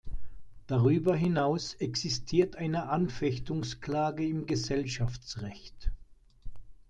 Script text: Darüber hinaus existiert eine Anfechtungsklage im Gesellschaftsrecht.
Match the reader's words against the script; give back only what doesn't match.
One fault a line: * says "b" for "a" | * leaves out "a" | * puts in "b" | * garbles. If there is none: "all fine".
all fine